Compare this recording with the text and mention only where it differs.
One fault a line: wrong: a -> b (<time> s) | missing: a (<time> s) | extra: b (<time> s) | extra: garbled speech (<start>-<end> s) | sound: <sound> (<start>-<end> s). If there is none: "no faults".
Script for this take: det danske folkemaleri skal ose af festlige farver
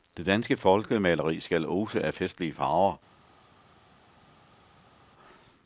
no faults